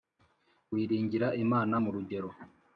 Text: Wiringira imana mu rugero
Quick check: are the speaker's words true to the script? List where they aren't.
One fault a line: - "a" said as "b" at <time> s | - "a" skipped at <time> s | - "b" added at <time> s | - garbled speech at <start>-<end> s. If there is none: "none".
none